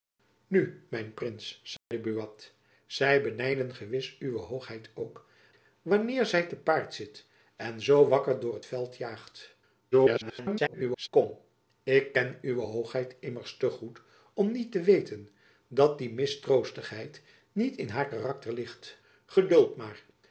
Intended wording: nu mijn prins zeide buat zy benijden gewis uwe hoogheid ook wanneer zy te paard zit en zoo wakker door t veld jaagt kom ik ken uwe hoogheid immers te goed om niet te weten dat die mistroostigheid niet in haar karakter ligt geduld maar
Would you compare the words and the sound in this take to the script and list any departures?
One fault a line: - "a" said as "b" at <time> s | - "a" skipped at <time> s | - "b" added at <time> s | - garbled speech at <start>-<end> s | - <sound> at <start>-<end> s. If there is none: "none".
- dropout at 1.8-1.9 s
- garbled speech at 9.9-11.1 s